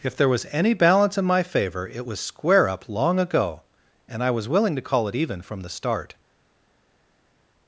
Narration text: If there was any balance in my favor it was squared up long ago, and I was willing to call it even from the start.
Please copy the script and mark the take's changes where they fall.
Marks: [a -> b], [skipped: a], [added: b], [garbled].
If there was any balance in my favor it was [squared -> square] up long ago, and I was willing to call it even from the start.